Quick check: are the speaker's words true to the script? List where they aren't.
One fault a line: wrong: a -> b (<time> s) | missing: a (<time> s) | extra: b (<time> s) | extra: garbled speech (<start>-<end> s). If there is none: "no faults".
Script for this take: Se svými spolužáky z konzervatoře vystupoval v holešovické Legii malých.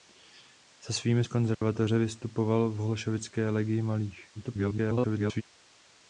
missing: spolužáky (1.2 s)
extra: garbled speech (4.3-5.4 s)